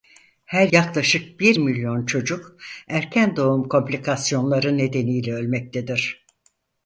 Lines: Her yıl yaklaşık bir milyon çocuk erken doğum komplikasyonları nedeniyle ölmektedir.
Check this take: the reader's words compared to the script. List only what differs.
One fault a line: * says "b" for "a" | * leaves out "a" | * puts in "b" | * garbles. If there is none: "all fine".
* leaves out "yıl"